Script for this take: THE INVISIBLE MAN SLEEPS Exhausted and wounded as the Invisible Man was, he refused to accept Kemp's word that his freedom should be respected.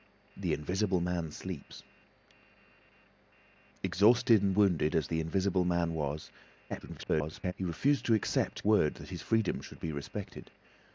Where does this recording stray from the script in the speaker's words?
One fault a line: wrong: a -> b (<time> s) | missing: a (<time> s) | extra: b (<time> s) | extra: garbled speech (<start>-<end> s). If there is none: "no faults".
extra: garbled speech (6.7-7.5 s)
missing: Kemp's (8.6 s)